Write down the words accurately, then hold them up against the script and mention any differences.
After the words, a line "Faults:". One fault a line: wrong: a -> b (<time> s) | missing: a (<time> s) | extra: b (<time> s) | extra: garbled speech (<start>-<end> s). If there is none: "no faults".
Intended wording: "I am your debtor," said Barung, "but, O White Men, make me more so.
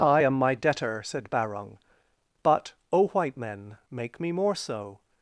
"I am my debtor," said Barung, "but, O White Men, make me more so.
Faults:
wrong: your -> my (0.3 s)